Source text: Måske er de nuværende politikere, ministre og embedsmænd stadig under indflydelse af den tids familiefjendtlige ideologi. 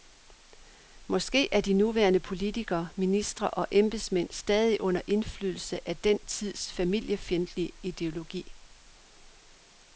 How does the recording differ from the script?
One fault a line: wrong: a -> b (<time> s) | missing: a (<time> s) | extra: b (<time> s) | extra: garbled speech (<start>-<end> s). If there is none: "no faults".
no faults